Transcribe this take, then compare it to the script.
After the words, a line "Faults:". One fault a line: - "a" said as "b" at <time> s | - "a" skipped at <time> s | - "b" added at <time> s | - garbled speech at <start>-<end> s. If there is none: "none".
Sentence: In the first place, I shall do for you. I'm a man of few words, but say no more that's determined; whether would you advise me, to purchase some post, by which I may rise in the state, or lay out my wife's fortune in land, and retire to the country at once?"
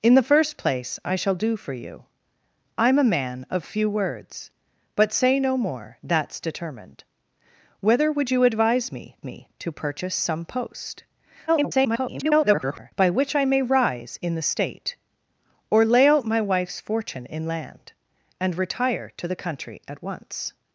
In the first place, I shall do for you. I'm a man of few words, but say no more that's determined; whether would you advise me me, to purchase some post, [garbled] by which I may rise in the state, or lay out my wife's fortune in land, and retire to the country at once?"
Faults:
- "me" added at 9.2 s
- garbled speech at 11.5-12.9 s